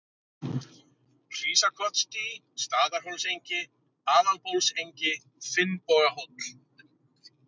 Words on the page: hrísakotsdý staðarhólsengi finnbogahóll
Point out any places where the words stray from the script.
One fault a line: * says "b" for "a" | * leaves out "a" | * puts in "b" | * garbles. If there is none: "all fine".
* puts in "aðalbólsengi"